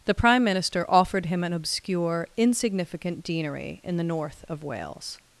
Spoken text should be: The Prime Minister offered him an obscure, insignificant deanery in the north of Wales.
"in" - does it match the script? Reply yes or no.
yes